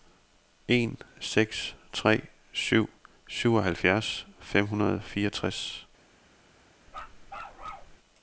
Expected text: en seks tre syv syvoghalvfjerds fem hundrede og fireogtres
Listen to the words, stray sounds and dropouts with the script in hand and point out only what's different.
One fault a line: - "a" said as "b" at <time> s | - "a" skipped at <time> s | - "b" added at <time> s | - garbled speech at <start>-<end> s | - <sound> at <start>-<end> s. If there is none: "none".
- bark at 6.9-8.0 s